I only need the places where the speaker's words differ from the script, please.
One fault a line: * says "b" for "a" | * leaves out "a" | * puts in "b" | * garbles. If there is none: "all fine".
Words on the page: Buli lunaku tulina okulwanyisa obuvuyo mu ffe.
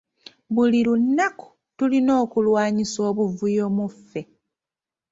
all fine